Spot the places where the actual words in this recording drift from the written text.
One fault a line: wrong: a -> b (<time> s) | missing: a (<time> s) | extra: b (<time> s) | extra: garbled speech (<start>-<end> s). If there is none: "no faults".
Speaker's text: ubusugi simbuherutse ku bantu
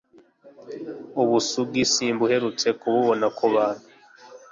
extra: kububona (2.8 s)